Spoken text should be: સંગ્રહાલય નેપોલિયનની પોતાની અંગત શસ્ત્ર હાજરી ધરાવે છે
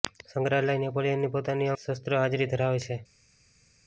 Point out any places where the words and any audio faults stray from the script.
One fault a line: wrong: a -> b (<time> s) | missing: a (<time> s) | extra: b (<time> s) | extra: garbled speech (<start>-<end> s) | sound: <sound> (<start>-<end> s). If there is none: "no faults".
missing: અંગત (1.7 s)